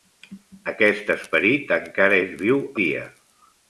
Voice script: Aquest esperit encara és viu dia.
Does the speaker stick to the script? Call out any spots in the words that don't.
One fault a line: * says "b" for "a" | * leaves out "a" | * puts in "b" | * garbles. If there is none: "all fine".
all fine